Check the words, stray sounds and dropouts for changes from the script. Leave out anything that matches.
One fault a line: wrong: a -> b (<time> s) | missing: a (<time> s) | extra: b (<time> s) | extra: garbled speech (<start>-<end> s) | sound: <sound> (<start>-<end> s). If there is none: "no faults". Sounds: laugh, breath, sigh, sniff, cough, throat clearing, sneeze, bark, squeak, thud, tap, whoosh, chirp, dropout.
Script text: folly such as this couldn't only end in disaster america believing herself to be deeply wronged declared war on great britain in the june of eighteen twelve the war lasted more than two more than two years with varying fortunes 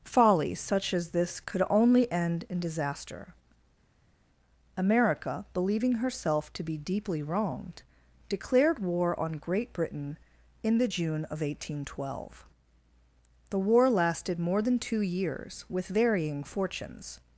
wrong: couldn't -> could (1.4 s)
missing: more than two (15.0 s)